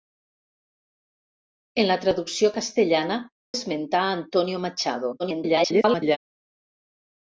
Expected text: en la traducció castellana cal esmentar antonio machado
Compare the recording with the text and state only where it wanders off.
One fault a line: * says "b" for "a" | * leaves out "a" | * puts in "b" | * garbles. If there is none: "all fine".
* leaves out "cal"
* garbles